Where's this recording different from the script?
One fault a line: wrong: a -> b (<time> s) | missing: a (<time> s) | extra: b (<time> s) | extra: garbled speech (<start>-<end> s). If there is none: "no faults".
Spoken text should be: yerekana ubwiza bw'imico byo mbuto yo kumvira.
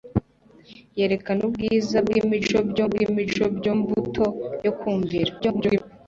extra: bw'imico byo (2.9 s)
extra: garbled speech (5.4-5.8 s)